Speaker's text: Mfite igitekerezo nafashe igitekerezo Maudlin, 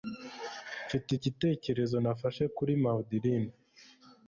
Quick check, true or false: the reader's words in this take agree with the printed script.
false